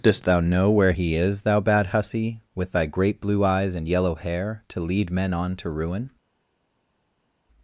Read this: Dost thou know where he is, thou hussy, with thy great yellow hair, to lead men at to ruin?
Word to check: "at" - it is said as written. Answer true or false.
false